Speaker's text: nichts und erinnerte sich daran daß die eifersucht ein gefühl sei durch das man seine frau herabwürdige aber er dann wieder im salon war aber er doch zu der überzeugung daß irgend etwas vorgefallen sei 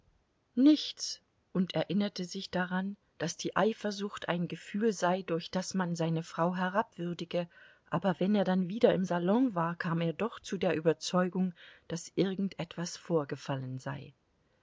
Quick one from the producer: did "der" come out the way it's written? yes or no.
yes